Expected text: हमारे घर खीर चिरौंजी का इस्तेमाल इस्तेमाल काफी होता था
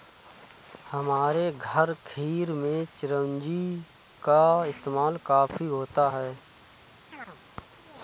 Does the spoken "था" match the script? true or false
false